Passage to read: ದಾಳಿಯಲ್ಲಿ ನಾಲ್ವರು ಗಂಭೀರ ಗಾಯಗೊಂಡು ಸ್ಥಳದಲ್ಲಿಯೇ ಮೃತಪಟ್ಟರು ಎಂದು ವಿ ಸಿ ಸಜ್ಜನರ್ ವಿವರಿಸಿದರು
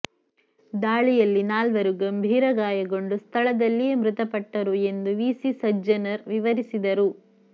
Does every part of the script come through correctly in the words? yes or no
yes